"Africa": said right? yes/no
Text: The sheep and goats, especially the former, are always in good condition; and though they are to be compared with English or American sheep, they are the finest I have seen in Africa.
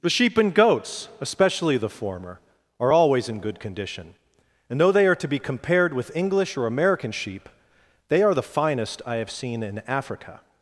yes